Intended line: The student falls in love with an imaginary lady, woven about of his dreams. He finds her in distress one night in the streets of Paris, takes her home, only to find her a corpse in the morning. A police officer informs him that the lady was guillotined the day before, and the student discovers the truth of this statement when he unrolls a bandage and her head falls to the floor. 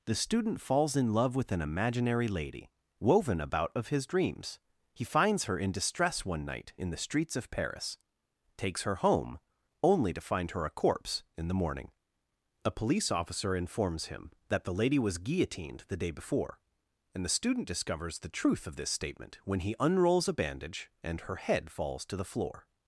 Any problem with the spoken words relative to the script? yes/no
no